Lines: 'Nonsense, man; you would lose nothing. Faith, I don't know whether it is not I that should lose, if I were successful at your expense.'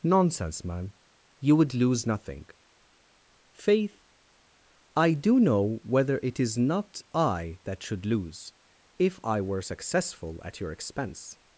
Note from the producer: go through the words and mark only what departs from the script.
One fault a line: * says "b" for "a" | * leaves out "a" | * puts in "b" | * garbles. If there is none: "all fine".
* says "do" for "don't"